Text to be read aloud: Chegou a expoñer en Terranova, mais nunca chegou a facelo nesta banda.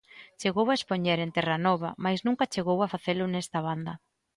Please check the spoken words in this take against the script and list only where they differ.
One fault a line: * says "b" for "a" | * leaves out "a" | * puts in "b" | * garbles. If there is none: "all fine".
all fine